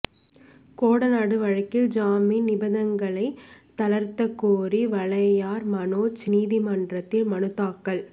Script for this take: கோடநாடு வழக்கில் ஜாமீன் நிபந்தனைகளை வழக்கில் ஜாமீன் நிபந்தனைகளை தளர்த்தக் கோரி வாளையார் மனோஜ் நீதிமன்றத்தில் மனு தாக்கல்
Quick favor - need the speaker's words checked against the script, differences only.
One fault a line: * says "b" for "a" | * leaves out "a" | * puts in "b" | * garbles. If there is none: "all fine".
* leaves out "வழக்கில் ஜாமீன் நிபந்தனைகளை"